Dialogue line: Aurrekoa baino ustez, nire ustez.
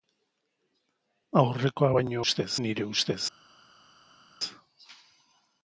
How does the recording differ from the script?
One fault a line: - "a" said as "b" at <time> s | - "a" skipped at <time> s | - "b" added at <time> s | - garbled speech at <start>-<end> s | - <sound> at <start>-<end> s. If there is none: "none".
none